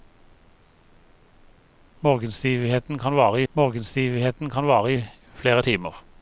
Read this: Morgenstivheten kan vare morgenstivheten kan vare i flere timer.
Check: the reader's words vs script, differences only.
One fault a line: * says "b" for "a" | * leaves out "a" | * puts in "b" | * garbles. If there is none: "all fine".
all fine